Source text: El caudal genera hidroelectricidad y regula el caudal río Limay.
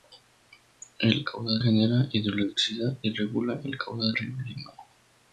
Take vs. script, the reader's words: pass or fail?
pass